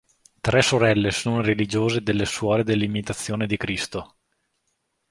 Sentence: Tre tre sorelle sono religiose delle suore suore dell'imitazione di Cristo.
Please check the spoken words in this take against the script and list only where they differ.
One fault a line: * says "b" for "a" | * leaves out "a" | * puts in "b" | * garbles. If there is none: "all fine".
* leaves out "tre"
* leaves out "suore"